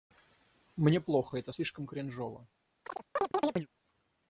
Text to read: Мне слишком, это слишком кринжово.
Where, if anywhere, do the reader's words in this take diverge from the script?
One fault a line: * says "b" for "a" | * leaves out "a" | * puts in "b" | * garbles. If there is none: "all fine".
* says "плохо" for "слишком"